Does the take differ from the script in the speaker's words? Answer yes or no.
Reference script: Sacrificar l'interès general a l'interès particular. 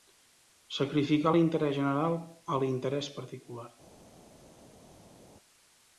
no